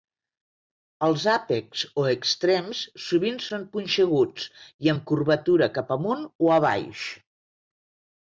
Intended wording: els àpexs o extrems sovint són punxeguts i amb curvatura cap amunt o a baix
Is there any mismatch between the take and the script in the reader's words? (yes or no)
no